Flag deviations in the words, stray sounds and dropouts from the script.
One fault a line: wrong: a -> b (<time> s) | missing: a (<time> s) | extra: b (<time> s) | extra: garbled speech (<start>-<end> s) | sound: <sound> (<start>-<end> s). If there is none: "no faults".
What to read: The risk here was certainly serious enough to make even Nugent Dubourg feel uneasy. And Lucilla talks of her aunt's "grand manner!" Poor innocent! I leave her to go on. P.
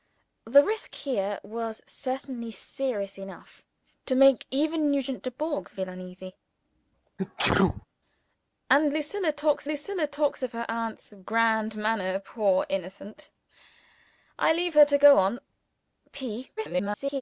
sound: sneeze (7.2-7.9 s)
extra: Lucilla talks (9.7 s)
extra: garbled speech (16.6-17.2 s)